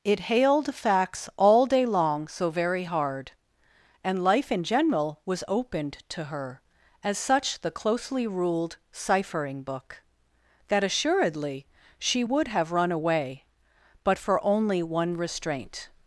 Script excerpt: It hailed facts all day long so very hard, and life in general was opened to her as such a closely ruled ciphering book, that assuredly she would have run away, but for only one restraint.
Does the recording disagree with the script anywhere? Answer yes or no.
yes